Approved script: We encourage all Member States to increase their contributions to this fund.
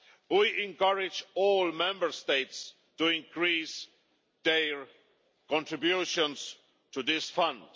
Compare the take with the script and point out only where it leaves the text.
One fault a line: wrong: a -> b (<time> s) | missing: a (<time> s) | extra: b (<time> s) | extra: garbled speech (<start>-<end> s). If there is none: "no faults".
no faults